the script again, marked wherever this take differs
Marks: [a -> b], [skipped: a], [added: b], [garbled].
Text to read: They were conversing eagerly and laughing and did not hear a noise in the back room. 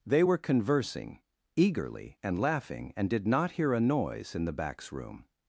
They were conversing eagerly and laughing and did not hear a noise in the [back -> backs] room.